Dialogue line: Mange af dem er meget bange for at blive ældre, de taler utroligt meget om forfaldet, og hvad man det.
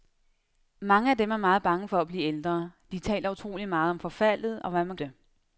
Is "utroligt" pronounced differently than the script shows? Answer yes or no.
no